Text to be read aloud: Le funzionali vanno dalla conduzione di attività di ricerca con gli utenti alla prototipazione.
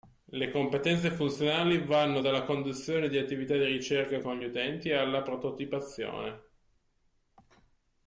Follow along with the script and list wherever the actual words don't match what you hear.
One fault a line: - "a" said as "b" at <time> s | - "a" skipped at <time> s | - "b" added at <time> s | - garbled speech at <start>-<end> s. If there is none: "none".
- "competenze" added at 0.5 s